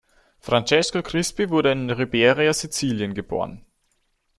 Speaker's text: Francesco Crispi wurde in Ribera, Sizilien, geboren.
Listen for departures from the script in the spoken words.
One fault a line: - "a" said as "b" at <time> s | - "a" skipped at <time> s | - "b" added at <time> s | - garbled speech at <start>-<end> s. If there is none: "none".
none